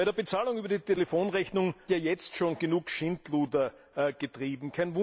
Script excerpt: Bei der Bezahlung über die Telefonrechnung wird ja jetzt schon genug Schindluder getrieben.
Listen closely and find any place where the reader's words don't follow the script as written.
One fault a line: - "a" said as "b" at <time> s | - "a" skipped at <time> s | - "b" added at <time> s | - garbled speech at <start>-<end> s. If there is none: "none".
- "wird" skipped at 1.8 s